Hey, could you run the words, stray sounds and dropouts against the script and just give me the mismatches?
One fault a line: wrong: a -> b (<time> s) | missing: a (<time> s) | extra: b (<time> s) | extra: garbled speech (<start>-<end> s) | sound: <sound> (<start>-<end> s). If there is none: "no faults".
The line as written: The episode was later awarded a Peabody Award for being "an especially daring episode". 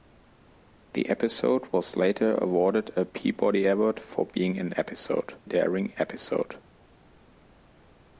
wrong: especially -> episode (4.7 s)